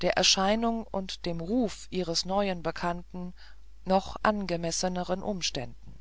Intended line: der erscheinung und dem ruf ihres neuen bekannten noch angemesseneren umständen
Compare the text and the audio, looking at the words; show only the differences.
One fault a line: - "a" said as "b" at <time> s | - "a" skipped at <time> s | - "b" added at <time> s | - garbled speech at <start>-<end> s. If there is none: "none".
none